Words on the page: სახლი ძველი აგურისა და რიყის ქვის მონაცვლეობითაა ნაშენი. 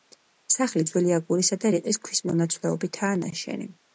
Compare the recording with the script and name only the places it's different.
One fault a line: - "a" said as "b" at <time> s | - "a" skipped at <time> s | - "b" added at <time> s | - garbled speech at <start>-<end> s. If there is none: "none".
none